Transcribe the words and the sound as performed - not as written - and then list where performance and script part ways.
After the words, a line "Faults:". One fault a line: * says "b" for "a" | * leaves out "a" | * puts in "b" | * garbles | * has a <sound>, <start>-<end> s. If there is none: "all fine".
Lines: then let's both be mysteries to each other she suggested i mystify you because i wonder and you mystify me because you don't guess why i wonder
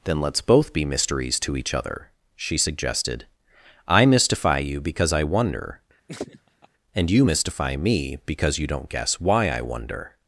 then let's both be mysteries to each other she suggested i mystify you because i wonder and you mystify me because you don't guess why i wonder
Faults:
* has a laugh, 6.1-6.7 s